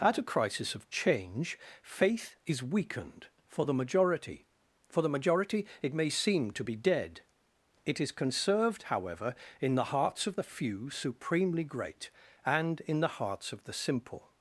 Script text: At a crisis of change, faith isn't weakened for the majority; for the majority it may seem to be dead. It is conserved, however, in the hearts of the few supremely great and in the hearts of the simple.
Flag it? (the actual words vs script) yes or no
yes